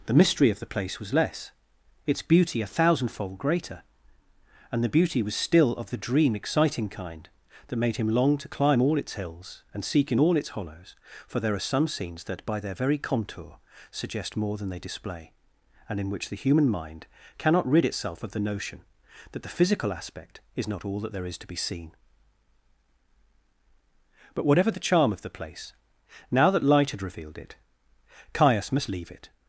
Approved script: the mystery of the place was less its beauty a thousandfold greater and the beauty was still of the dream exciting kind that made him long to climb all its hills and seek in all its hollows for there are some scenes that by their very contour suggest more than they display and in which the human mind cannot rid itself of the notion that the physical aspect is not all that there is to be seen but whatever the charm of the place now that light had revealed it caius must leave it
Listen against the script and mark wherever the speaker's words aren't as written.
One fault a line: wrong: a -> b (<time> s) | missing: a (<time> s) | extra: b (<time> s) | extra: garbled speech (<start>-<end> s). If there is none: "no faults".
no faults